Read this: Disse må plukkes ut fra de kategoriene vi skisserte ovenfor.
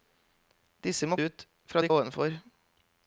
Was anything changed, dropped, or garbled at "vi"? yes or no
yes